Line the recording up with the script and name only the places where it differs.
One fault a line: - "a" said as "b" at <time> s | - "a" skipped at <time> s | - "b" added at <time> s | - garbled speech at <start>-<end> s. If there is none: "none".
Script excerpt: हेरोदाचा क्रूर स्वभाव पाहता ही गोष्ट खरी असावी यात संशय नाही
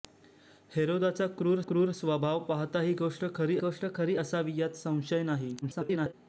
- "क्रूर" added at 1.6 s
- "गोष्ट खरी" added at 3.6 s
- garbled speech at 5.6-6.1 s